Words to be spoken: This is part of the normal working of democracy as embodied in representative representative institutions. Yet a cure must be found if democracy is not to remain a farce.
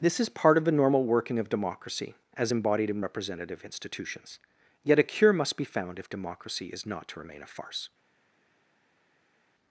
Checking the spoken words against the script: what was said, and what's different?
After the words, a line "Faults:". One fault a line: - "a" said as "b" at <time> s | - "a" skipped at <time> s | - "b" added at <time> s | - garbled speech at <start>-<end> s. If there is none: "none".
This is part of the normal working of democracy as embodied in representative institutions. Yet a cure must be found if democracy is not to remain a farce.
Faults:
- "representative" skipped at 3.6 s